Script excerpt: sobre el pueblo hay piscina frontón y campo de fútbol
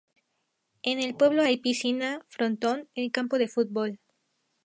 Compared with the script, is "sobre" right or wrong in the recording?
wrong